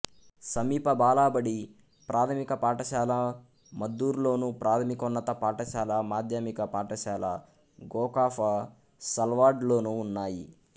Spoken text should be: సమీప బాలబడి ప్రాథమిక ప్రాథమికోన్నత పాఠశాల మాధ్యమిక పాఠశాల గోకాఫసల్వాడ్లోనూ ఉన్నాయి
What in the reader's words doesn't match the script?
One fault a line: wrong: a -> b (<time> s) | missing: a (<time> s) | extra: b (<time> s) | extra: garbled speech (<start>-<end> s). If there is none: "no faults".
extra: పాఠశాల మద్దూరులోను (2.5 s)